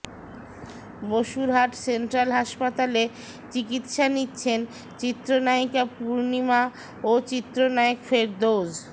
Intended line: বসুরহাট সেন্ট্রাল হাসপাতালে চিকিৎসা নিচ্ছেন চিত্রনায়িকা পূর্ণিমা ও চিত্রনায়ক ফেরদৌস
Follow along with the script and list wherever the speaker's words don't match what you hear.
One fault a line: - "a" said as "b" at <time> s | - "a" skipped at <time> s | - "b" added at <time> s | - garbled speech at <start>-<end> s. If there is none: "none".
none